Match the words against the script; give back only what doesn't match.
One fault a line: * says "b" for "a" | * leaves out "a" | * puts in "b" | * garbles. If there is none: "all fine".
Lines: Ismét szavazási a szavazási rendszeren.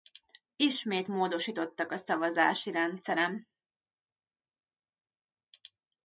* says "módosítottak" for "szavazási"